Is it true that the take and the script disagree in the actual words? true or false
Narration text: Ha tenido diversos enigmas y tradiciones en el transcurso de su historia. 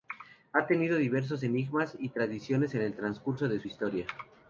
false